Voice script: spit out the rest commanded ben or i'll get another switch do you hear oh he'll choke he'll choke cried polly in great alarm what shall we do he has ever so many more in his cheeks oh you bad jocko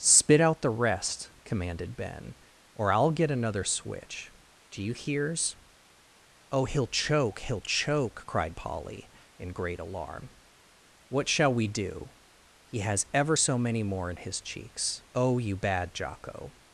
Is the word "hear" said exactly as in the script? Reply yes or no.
no